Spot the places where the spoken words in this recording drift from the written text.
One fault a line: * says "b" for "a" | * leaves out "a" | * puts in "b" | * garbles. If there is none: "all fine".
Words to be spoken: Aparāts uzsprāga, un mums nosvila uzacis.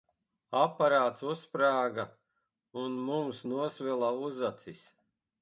all fine